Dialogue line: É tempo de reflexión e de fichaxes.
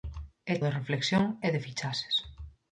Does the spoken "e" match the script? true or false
true